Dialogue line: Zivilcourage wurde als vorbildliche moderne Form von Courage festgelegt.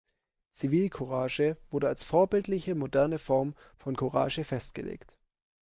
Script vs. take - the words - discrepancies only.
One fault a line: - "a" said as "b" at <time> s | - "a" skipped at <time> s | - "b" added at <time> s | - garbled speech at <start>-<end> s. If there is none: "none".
none